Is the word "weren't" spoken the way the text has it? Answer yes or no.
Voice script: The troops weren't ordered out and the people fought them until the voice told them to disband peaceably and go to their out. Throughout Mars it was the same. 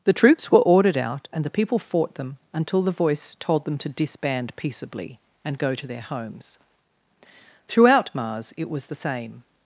no